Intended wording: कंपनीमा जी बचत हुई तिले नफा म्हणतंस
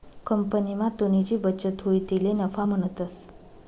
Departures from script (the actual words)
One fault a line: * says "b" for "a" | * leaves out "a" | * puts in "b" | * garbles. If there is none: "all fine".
* puts in "तुनी"